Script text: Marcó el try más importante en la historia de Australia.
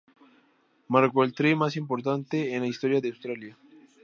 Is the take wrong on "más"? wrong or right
right